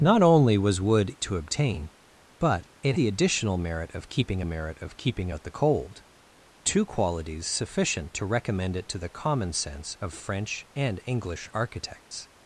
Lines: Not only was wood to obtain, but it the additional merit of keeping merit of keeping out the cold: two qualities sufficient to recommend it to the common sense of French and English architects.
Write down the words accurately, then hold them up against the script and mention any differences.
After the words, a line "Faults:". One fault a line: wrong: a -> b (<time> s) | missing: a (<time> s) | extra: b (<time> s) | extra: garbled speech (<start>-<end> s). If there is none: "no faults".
Not only was wood to obtain, but it the additional merit of keeping merit of keeping out the cold: two qualities sufficient to recommend it to the common sense of French and English architects.
Faults:
no faults